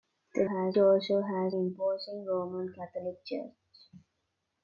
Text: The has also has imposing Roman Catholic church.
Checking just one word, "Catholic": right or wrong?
right